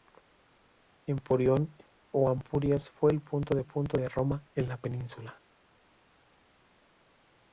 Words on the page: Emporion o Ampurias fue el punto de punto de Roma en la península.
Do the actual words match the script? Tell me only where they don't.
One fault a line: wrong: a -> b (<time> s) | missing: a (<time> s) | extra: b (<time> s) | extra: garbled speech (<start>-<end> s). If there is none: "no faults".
no faults